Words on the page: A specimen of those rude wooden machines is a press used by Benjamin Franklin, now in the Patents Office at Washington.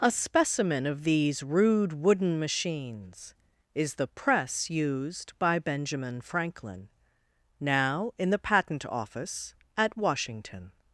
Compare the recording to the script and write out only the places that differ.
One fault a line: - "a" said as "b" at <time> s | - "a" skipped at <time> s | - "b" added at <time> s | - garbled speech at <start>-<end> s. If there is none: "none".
- "those" said as "these" at 1.0 s
- "a" said as "the" at 4.0 s
- "Patents" said as "Patent" at 8.4 s